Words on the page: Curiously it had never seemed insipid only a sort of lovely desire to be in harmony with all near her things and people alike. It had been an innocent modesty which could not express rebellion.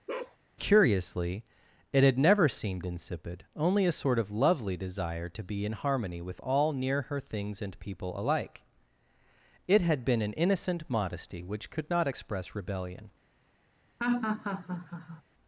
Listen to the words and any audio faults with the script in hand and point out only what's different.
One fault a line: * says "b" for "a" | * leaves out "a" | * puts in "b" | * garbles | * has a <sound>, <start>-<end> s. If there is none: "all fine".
* has a bark, 0.1-0.4 s
* has a laugh, 14.0-15.2 s